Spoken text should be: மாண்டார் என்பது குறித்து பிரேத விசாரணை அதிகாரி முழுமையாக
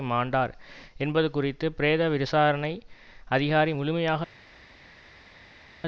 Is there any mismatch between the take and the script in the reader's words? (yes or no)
no